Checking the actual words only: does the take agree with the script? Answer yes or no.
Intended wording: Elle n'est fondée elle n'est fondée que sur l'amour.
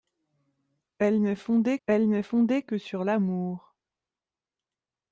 yes